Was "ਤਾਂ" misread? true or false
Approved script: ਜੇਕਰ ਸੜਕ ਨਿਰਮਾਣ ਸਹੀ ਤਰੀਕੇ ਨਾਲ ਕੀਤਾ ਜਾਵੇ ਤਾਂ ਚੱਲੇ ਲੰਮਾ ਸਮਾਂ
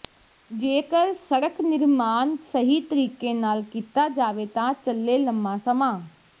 false